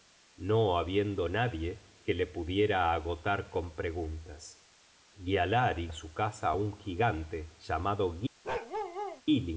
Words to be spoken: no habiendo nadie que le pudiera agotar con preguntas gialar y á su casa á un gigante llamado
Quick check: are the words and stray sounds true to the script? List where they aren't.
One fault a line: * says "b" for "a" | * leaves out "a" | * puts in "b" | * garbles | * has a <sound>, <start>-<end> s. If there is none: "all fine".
* has a bark, 8.4-9.2 s